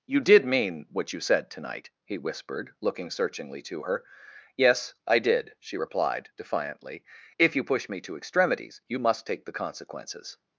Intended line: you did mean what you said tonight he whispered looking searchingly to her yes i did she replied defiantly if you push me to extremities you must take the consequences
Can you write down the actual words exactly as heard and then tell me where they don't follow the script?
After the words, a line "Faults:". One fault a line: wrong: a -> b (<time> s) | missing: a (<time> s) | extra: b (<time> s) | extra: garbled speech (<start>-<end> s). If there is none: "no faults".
you did mean what you said tonight he whispered looking searchingly to her yes i did she replied defiantly if you push me to extremities you must take the consequences
Faults:
no faults